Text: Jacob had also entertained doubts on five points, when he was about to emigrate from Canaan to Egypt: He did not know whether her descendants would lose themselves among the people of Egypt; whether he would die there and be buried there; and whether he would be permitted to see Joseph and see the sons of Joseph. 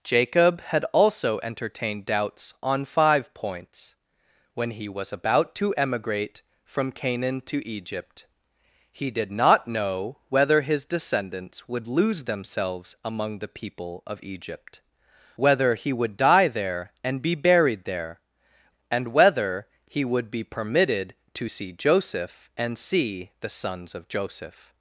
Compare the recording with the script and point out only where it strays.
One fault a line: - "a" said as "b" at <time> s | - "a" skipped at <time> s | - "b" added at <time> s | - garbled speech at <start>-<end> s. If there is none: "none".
- "her" said as "his" at 10.6 s